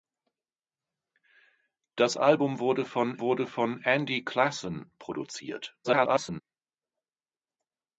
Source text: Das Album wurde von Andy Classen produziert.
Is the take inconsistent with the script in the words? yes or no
yes